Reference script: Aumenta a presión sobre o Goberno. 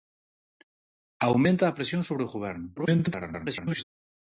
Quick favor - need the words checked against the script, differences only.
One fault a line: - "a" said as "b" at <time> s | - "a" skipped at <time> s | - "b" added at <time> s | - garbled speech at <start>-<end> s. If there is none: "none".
- garbled speech at 2.8-3.8 s